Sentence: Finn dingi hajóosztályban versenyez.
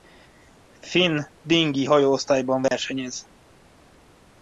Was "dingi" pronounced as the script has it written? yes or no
yes